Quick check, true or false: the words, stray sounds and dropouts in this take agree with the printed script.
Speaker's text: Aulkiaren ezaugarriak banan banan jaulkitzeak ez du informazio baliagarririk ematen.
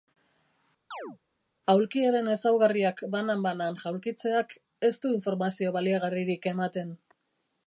false